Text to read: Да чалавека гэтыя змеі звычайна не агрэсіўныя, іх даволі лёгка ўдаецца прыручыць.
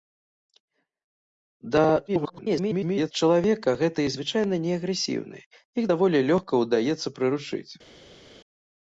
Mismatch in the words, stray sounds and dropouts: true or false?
true